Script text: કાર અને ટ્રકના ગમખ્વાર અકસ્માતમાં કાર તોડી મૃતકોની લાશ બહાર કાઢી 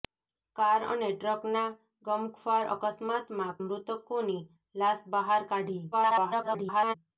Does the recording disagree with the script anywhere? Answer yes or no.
yes